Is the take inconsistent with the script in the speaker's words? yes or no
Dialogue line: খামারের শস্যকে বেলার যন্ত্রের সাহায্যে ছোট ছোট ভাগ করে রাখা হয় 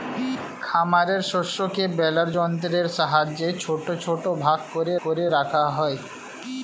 yes